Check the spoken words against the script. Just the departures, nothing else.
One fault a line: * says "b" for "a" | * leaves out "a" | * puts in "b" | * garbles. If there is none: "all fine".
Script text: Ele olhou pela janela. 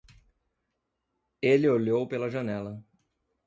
all fine